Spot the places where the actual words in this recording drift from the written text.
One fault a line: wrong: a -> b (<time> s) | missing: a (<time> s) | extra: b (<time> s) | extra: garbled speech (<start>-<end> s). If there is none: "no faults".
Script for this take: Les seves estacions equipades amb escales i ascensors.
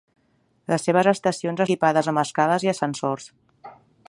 no faults